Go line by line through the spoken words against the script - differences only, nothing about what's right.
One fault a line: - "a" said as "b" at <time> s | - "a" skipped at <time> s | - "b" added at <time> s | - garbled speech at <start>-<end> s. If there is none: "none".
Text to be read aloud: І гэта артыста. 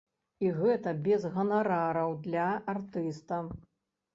- "без ганарараў для" added at 1.1 s